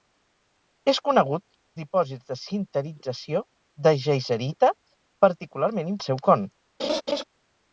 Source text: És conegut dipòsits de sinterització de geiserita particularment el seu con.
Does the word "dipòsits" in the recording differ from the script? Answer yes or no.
no